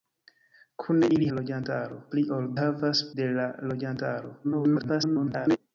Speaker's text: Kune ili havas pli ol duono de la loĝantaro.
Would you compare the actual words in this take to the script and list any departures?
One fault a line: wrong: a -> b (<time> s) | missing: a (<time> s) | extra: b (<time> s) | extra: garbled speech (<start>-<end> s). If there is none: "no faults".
wrong: havas -> loĝantaro (1.4 s)
wrong: duono -> havas (2.6 s)
extra: garbled speech (4.4-5.6 s)